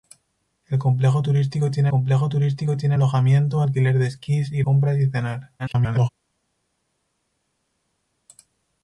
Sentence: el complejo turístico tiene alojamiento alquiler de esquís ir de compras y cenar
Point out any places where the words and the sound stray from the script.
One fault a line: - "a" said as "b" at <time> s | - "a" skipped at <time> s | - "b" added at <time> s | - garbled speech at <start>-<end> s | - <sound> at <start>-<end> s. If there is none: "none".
- "complejo turístico tiene" added at 1.9 s
- "de" skipped at 4.7 s
- garbled speech at 5.6-6.1 s